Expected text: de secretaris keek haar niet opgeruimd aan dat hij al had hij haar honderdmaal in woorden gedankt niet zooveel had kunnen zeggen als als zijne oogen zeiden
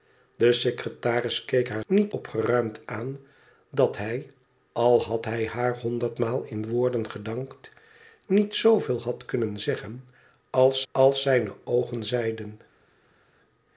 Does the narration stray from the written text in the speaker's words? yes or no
no